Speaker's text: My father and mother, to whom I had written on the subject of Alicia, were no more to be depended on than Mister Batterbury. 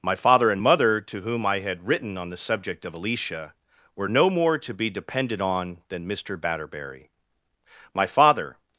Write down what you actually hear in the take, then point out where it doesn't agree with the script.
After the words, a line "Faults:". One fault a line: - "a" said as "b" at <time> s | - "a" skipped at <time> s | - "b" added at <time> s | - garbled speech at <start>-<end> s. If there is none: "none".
My father and mother, to whom I had written on the subject of Alicia, were no more to be depended on than Mister Batterbury. My father
Faults:
- "My father" added at 7.9 s